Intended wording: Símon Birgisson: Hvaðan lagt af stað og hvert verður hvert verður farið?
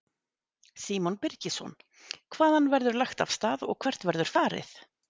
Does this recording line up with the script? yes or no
no